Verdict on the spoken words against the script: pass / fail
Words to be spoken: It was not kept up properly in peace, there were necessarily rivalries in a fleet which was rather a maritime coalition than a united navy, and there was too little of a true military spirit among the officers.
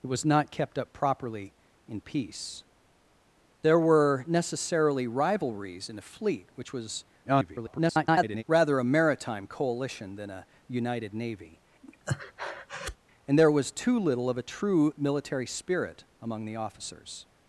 fail